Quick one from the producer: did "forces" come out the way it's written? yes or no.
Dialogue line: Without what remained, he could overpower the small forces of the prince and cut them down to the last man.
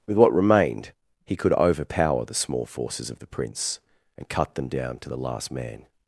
yes